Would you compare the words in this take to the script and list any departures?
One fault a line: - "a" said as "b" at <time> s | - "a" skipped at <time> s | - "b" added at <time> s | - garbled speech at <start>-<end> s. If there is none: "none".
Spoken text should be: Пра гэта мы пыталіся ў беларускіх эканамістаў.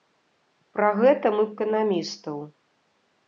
- "пыталіся ў беларускіх" skipped at 1.4 s